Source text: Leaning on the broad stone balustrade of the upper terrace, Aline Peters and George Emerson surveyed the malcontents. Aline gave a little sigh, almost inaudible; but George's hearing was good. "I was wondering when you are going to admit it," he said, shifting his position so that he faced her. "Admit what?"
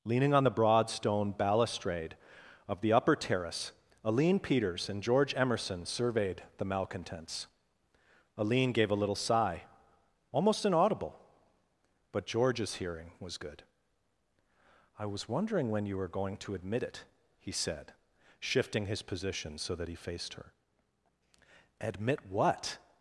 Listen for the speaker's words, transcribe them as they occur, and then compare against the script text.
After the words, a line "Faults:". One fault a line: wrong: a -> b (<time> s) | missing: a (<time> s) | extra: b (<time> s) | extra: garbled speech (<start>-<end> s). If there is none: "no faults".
Leaning on the broad stone balustrade of the upper terrace, Aline Peters and George Emerson surveyed the malcontents. Aline gave a little sigh, almost inaudible; but George's hearing was good. "I was wondering when you were going to admit it," he said, shifting his position so that he faced her. "Admit what?"
Faults:
wrong: are -> were (16.0 s)